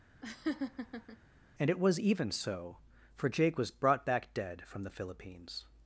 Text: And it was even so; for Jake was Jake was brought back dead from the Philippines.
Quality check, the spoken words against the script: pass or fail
fail